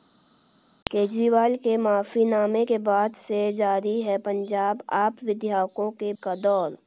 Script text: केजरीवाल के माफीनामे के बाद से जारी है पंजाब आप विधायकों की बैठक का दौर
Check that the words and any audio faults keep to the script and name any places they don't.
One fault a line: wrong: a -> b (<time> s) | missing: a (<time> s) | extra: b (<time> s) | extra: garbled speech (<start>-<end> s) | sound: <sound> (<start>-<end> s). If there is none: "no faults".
missing: बैठक (6.1 s)